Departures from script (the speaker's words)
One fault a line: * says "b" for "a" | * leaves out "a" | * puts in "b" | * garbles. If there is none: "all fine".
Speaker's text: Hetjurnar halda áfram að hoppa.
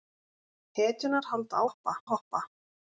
* says "hoppa" for "áfram"